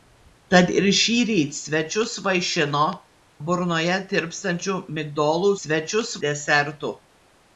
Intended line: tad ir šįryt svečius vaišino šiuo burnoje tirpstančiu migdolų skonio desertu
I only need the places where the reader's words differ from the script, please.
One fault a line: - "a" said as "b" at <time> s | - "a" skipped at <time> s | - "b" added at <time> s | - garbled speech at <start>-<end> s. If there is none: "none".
- "šiuo" skipped at 2.8 s
- "skonio" said as "svečius" at 5.5 s